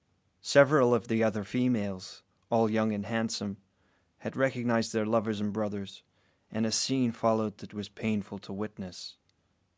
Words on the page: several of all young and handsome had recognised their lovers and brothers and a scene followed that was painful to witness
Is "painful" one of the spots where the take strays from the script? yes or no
no